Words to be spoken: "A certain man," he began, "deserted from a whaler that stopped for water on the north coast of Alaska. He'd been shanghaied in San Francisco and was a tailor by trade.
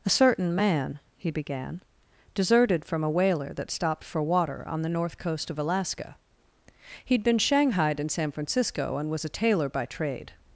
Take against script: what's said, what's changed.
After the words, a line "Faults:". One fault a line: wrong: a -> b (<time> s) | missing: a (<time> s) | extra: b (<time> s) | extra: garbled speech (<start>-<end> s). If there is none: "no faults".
"A certain man," he began, "deserted from a whaler that stopped for water on the north coast of Alaska. He'd been shanghaied in San Francisco and was a tailor by trade.
Faults:
no faults